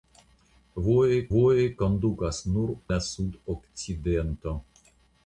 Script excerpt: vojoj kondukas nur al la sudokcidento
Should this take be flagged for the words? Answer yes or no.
yes